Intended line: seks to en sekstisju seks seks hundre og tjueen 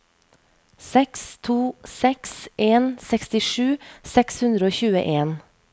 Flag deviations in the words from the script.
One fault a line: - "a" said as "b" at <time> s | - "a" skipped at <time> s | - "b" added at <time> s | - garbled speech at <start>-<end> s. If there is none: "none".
- "seks" added at 1.8 s
- "seks" skipped at 4.4 s